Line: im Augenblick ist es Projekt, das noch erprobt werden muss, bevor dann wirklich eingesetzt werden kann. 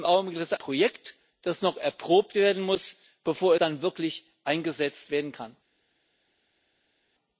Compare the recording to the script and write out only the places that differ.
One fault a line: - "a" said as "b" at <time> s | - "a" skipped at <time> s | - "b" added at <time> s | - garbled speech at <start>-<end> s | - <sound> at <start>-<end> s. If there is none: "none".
none